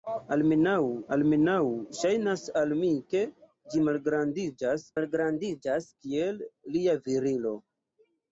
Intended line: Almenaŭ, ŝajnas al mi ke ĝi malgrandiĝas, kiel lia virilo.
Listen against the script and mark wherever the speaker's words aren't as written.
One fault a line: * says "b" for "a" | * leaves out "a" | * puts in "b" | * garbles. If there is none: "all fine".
* puts in "almenaŭ"
* puts in "malgrandiĝas"